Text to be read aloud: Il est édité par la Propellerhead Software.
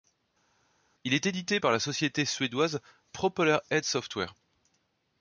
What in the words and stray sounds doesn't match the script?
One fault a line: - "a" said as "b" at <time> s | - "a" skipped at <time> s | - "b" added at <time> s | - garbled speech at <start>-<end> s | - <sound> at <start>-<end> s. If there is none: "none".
- "société suédoise" added at 1.8 s